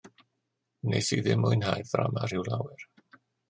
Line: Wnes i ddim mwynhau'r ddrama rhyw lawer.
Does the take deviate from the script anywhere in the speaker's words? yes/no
no